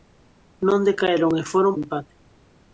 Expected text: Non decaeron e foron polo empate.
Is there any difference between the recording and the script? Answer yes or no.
yes